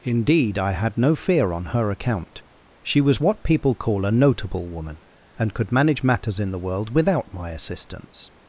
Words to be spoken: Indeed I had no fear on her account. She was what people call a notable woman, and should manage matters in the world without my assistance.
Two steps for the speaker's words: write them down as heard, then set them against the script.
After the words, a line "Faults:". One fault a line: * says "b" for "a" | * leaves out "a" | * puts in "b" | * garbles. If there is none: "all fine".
Indeed I had no fear on her account. She was what people call a notable woman, and could manage matters in the world without my assistance.
Faults:
* says "could" for "should"